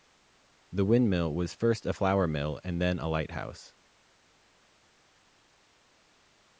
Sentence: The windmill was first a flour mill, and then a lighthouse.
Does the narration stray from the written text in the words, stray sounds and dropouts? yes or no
no